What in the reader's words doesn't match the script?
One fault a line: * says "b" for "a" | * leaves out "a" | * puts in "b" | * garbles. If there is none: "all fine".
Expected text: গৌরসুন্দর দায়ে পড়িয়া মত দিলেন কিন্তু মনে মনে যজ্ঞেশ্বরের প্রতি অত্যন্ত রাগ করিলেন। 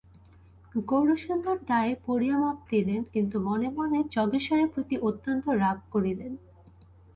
all fine